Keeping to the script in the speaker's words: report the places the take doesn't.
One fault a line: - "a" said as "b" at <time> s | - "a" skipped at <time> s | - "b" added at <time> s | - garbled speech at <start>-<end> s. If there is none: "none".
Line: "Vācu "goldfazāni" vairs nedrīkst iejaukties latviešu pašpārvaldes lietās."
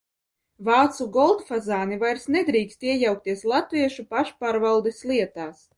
none